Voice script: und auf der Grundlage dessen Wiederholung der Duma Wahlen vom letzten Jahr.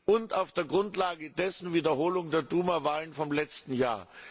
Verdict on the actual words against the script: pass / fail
pass